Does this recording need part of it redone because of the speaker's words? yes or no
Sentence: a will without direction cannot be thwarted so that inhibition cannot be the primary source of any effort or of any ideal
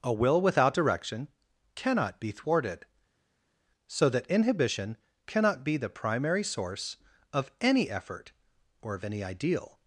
no